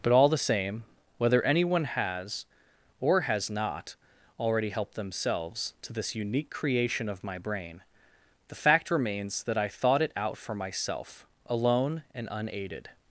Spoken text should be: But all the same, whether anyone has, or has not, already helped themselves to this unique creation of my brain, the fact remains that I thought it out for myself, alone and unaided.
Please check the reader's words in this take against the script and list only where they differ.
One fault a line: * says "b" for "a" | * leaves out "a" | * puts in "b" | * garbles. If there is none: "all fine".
all fine